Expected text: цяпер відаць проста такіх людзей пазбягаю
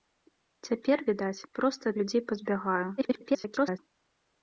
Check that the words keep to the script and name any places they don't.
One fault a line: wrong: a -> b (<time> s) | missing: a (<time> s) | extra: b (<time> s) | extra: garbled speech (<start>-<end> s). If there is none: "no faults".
missing: такіх (1.9 s)
extra: garbled speech (3.0-3.8 s)